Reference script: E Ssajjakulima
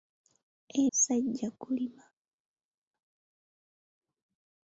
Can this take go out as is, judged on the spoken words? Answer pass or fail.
pass